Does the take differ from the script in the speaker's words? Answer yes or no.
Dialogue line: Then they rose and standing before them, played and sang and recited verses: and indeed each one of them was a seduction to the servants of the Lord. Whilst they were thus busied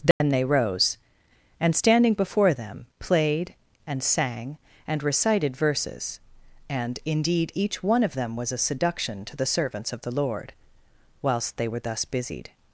no